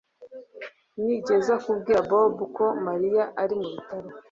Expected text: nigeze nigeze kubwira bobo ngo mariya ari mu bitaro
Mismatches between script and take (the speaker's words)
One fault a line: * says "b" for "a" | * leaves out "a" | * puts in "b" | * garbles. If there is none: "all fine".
* leaves out "nigeze"
* says "ko" for "ngo"